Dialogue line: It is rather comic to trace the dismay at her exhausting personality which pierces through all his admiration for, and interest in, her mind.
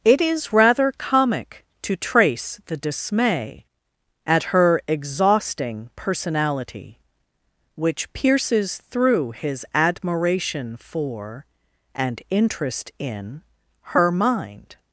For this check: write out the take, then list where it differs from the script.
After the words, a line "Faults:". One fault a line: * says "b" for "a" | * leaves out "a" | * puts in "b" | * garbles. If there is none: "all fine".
It is rather comic to trace the dismay at her exhausting personality which pierces through his admiration for, and interest in, her mind.
Faults:
* leaves out "all"